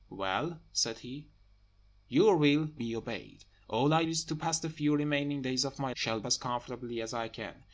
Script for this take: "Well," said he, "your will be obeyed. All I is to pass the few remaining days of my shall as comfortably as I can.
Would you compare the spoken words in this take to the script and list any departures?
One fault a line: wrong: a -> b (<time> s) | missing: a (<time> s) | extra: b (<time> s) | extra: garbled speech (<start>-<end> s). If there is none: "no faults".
no faults